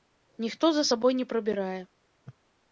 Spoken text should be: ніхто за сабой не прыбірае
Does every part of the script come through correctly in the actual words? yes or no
yes